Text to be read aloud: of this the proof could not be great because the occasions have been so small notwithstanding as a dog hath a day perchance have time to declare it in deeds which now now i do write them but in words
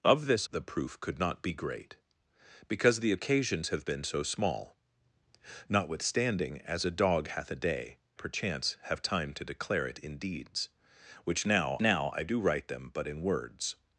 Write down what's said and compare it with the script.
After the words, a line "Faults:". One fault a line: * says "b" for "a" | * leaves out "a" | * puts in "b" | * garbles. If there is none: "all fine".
of this the proof could not be great because the occasions have been so small notwithstanding as a dog hath a day perchance have time to declare it in deeds which now now i do write them but in words
Faults:
all fine